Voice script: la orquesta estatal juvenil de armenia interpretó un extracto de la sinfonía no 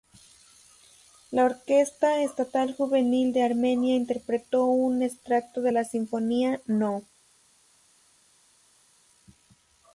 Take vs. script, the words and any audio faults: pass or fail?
pass